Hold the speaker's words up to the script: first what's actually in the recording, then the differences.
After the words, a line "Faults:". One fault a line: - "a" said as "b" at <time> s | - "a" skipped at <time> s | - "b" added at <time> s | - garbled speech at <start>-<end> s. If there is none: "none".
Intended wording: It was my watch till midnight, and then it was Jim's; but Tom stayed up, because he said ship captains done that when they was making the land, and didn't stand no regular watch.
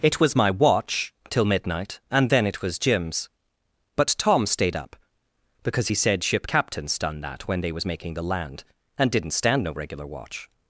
It was my watch till midnight, and then it was Jim's; but Tom stayed up, because he said ship captains done that when they was making the land, and didn't stand no regular watch.
Faults:
none